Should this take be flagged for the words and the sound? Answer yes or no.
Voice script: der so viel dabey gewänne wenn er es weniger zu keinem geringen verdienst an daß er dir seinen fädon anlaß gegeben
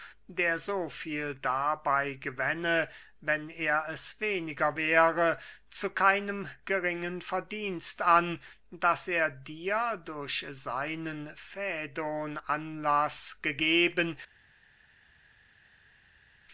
yes